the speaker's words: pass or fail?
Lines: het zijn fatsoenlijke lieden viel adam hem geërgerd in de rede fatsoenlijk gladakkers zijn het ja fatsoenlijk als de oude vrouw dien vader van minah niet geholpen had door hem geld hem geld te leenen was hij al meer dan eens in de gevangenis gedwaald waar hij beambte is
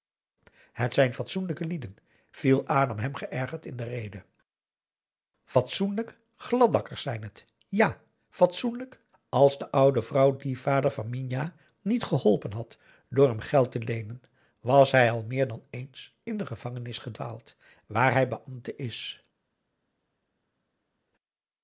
fail